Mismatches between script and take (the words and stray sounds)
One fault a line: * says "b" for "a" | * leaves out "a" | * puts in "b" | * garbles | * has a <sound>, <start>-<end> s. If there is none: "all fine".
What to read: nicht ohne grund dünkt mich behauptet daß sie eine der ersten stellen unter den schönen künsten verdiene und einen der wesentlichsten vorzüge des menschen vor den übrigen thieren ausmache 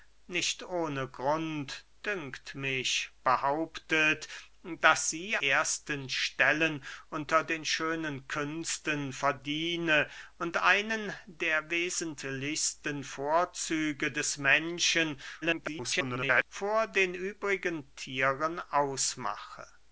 * leaves out "eine der"
* garbles